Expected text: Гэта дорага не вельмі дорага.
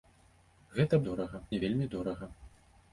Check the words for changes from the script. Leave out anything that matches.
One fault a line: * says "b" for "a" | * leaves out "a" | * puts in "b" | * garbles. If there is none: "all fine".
all fine